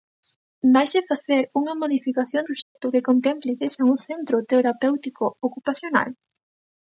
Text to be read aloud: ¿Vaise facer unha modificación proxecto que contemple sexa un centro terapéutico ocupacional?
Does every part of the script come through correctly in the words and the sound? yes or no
no